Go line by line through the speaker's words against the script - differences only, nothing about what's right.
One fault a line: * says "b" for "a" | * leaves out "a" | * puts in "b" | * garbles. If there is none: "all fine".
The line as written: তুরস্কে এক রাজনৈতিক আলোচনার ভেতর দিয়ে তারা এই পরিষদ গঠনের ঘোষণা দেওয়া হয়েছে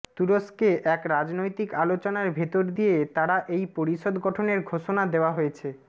all fine